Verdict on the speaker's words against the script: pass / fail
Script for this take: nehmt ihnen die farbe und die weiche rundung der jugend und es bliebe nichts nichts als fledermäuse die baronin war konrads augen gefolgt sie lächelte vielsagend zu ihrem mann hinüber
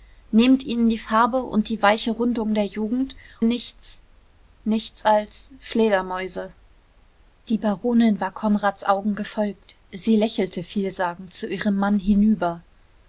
fail